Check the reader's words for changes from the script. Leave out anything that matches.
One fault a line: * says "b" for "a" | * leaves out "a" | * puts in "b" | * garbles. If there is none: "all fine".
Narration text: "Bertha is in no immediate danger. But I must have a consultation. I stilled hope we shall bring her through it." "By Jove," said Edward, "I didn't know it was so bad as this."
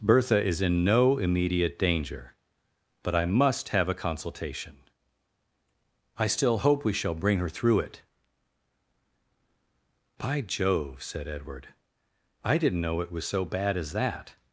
* says "still" for "stilled"
* says "that" for "this"